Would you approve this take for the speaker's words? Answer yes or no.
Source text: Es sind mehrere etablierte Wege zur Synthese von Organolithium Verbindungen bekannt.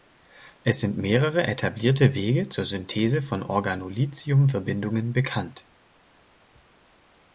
yes